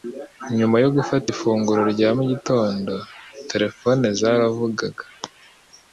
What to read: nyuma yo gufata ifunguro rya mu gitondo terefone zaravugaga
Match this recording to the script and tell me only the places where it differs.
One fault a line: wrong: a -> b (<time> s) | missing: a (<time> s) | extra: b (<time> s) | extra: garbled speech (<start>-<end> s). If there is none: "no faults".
no faults